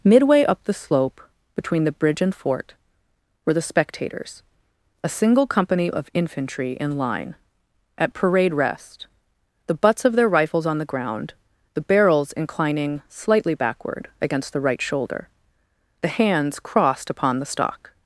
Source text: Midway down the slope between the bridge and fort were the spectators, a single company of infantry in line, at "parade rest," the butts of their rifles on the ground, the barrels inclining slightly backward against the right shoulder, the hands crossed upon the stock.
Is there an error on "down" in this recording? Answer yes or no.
yes